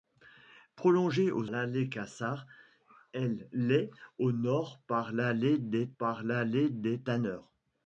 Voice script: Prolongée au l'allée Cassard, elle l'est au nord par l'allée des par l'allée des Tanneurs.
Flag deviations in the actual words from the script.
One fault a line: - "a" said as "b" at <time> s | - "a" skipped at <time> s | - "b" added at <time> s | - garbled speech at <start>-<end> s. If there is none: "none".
none